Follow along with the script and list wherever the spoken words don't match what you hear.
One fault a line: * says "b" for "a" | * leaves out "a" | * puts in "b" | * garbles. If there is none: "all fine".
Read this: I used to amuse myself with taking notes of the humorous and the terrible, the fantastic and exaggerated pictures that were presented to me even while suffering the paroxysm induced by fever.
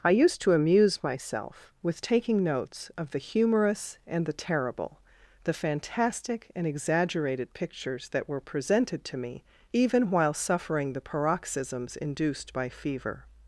* says "paroxysms" for "paroxysm"